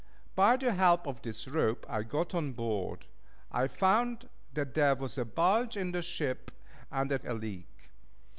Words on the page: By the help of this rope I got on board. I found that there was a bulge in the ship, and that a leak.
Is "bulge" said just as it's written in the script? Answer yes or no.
yes